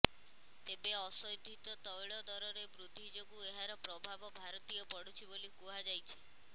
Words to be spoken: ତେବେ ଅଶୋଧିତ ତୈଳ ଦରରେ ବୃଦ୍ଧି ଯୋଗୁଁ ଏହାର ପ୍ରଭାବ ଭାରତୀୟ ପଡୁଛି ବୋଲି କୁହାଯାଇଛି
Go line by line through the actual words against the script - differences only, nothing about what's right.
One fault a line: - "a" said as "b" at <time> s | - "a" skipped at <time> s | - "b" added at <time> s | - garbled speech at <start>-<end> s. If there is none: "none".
none